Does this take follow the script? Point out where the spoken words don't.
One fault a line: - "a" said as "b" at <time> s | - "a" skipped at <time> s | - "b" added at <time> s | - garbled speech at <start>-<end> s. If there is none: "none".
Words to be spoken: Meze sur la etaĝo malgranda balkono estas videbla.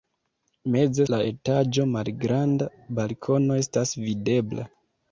- "sur" skipped at 1.1 s